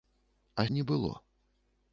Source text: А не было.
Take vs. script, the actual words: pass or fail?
pass